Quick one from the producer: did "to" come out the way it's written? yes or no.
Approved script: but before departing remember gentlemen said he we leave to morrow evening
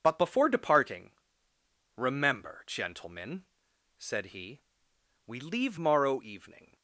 no